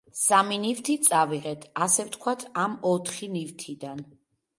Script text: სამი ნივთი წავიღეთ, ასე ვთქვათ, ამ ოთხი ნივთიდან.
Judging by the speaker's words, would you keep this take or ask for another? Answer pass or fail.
pass